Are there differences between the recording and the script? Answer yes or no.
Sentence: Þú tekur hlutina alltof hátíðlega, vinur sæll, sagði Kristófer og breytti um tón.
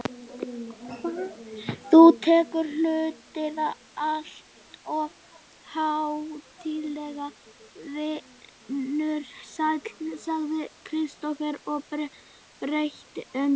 no